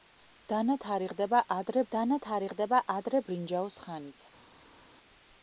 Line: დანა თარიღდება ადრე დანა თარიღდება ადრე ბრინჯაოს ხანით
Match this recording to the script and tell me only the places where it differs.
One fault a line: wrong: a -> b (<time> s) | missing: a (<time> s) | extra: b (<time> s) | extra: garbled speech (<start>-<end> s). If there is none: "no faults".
no faults